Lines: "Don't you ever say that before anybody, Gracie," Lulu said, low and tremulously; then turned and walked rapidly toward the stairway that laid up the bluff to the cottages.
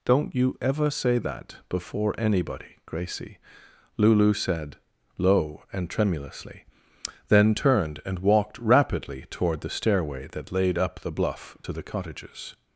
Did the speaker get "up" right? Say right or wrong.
right